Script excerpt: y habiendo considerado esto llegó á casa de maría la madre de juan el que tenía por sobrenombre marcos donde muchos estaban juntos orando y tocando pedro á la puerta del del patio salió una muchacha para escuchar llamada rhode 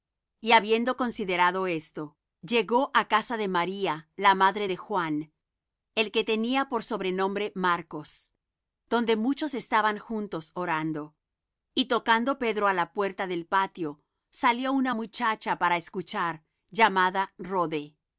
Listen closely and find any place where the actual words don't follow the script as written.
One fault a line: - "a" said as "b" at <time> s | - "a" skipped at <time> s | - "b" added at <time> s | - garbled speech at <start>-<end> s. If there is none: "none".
- "del" skipped at 13.4 s